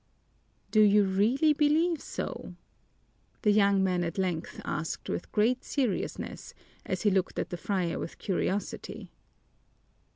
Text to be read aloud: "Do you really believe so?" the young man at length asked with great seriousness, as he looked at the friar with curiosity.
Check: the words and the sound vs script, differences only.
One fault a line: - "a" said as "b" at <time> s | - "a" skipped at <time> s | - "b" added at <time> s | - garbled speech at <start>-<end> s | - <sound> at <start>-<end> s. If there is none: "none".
none